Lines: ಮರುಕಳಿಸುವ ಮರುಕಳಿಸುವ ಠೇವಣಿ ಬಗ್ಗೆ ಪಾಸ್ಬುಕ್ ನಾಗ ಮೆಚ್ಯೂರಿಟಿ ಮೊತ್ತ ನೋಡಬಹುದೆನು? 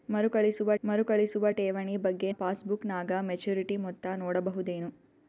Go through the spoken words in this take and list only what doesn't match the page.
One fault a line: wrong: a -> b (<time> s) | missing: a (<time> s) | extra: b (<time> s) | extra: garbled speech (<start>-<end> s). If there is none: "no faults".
no faults